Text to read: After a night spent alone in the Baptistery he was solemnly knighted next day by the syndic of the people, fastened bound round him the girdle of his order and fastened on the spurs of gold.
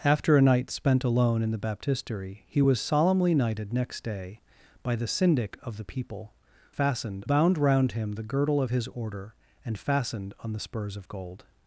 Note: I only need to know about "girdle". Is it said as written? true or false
true